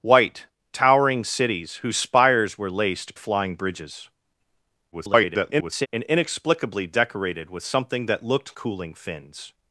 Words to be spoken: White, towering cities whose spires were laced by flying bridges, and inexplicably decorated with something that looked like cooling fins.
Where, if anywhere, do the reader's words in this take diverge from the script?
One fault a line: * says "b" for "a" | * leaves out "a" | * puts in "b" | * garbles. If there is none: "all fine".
* leaves out "by"
* garbles
* leaves out "like"